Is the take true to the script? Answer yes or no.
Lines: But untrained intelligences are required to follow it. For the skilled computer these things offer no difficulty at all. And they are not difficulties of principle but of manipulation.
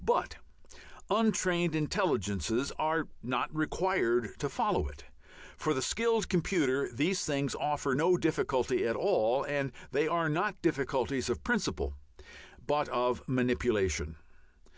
no